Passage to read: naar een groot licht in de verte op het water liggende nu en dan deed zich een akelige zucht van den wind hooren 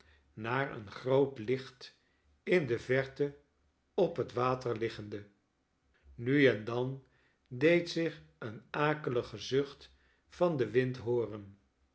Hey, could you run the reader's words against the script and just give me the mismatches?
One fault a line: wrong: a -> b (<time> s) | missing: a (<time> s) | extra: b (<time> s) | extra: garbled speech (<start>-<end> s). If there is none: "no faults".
no faults